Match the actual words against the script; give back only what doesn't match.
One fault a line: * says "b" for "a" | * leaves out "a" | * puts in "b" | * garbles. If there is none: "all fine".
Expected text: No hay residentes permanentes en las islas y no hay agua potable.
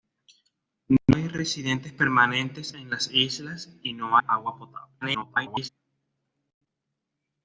* leaves out "hay"
* garbles